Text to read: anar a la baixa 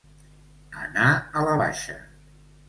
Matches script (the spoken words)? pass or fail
pass